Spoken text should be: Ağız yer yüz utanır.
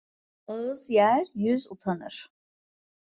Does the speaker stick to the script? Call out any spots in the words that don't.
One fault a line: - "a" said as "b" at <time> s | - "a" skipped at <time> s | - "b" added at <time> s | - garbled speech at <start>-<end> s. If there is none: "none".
none